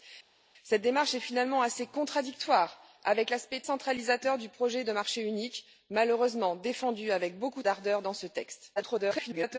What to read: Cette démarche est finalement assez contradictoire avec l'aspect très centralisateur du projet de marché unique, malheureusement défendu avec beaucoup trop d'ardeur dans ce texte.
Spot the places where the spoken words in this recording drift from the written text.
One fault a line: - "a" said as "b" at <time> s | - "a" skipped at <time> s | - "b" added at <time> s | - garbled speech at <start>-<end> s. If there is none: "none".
- "très" skipped at 3.6 s
- "trop" skipped at 7.6 s
- garbled speech at 8.8-9.6 s